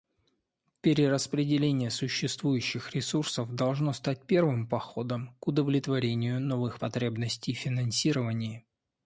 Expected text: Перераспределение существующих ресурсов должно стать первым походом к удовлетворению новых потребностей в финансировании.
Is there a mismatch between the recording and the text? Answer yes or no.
no